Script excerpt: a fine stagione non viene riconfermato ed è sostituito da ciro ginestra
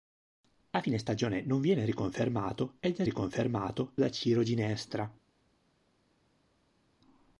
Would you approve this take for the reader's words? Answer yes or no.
no